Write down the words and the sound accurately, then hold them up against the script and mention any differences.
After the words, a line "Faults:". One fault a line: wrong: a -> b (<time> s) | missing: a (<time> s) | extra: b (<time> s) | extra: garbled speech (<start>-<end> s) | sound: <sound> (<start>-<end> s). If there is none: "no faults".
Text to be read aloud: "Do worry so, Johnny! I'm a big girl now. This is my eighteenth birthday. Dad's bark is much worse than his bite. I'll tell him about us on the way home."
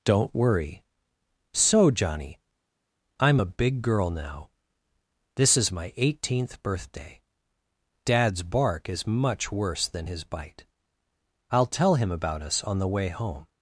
"Don't worry so, Johnny! I'm a big girl now. This is my eighteenth birthday. Dad's bark is much worse than his bite. I'll tell him about us on the way home."
Faults:
wrong: Do -> Don't (0.0 s)